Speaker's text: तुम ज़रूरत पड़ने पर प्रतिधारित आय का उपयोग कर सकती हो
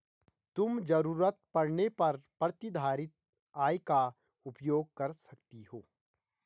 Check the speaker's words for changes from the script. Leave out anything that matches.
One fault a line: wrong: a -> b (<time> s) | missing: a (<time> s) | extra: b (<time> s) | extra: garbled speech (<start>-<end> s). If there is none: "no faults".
no faults